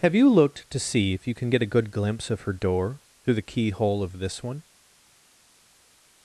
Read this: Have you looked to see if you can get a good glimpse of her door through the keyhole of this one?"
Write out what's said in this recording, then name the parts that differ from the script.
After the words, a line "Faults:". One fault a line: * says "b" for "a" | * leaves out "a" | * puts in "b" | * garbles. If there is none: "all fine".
Have you looked to see if you can get a good glimpse of her door through the keyhole of this one?"
Faults:
all fine